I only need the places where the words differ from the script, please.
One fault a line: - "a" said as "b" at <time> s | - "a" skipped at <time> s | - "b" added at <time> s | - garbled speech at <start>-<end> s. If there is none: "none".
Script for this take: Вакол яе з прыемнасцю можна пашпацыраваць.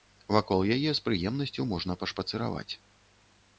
none